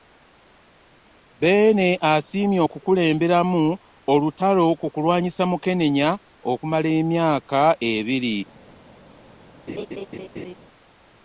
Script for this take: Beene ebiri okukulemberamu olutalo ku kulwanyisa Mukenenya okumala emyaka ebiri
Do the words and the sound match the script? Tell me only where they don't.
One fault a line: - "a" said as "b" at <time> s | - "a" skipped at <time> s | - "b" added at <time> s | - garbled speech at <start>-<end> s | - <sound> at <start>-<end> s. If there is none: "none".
- "ebiri" said as "asiimye" at 2.1 s
- laugh at 9.7-10.5 s